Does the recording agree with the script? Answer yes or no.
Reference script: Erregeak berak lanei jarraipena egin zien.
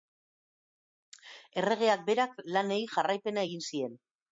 yes